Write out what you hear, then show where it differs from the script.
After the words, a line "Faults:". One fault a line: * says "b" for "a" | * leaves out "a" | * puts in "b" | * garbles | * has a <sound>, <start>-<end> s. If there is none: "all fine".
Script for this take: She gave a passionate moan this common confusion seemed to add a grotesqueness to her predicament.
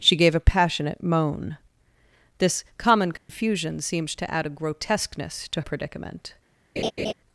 She gave a passionate moan this common confusion seemed to add a grotesqueness to predicament.
Faults:
* has a dropout, 3.2-3.3 s
* leaves out "her"
* has a laugh, 6.8-7.1 s